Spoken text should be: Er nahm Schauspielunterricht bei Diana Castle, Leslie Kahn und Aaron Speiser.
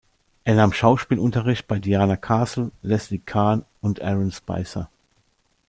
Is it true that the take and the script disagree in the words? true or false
false